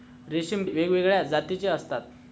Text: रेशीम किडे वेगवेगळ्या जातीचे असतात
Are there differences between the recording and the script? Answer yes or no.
yes